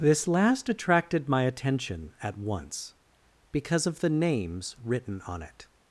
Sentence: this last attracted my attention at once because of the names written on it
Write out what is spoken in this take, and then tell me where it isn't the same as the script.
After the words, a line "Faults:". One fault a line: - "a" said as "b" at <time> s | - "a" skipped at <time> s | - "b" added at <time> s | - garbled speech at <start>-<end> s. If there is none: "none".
this last attracted my attention at once because of the names written on it
Faults:
none